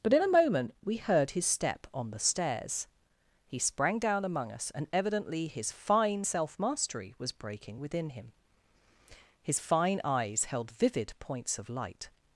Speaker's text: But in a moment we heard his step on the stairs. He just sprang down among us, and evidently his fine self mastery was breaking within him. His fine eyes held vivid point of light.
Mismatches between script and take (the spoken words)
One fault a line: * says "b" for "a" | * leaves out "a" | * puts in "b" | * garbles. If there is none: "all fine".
* leaves out "just"
* says "points" for "point"